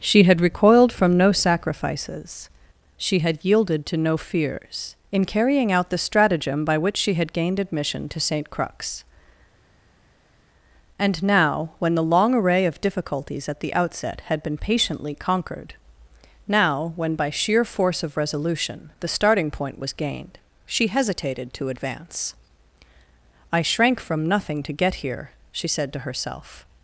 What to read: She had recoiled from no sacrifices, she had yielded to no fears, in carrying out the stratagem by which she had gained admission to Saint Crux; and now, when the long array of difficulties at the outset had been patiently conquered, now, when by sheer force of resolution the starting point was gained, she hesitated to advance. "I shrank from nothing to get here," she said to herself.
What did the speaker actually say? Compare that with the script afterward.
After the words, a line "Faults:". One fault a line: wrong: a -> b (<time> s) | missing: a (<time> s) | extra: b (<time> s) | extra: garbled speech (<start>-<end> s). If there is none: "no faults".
She had recoiled from no sacrifices, she had yielded to no fears, in carrying out the stratagem by which she had gained admission to Saint Crux; and now, when the long array of difficulties at the outset had been patiently conquered, now, when by sheer force of resolution the starting point was gained, she hesitated to advance. "I shrank from nothing to get here," she said to herself.
Faults:
no faults